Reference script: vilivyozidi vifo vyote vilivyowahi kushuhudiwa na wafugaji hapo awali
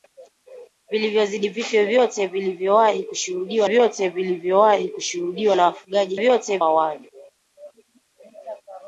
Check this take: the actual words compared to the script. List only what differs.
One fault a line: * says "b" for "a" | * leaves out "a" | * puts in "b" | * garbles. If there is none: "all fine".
* puts in "vyote vilivyowahi kushuhudiwa"
* says "vyote" for "hapo"